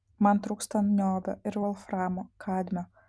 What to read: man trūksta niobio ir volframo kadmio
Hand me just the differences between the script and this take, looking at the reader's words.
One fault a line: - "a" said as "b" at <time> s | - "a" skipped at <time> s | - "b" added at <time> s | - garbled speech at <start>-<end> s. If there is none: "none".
none